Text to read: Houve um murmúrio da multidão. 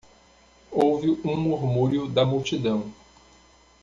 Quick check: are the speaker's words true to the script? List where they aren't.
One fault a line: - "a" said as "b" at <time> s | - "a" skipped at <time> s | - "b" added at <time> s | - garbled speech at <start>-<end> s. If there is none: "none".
none